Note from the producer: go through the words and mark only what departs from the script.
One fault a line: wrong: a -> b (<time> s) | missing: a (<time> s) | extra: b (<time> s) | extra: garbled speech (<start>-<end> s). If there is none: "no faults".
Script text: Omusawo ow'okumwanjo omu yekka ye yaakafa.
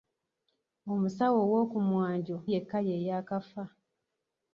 missing: omu (2.4 s)